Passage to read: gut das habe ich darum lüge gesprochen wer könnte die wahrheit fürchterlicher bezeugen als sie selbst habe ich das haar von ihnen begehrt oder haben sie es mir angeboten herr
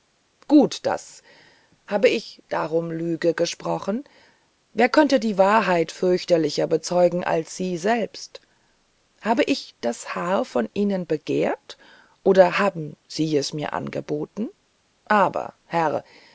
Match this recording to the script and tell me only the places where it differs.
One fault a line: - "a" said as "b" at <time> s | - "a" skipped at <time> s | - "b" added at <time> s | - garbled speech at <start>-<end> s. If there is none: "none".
- "aber" added at 15.1 s